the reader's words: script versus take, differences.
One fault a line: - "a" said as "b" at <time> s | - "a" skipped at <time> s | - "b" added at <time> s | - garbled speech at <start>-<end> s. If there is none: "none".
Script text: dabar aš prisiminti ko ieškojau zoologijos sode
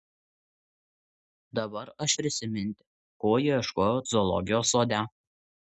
none